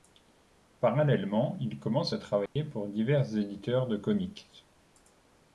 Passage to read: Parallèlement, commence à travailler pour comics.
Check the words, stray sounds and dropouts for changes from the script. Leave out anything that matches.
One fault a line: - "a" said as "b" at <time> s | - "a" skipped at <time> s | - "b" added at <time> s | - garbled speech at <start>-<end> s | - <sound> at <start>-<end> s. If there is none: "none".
- "il" added at 1.6 s
- dropout at 2.5-2.6 s
- "divers éditeurs de" added at 2.9 s